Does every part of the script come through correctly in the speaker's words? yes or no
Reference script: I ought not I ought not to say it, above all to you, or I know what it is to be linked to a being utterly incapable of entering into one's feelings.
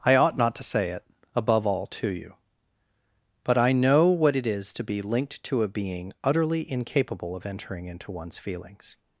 no